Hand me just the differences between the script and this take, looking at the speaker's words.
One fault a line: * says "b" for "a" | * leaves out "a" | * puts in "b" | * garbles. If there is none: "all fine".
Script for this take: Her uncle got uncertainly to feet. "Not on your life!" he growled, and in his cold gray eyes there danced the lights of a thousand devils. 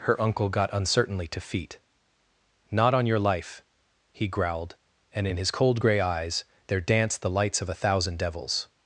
all fine